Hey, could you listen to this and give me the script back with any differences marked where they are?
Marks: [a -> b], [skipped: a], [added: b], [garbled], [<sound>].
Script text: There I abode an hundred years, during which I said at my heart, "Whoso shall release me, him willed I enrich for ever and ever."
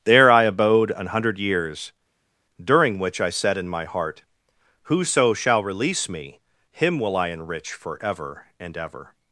There I abode an hundred years, during which I said [at -> in] my heart, "Whoso shall release me, him [willed -> will] I enrich for ever and ever."